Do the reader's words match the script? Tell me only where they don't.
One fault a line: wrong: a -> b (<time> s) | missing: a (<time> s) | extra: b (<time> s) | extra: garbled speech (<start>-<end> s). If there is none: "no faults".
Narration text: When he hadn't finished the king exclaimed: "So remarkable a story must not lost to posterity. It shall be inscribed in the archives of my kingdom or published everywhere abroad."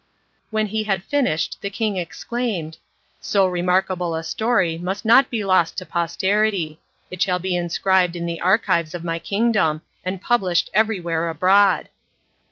wrong: hadn't -> had (0.8 s)
extra: be (5.3 s)
wrong: or -> and (10.0 s)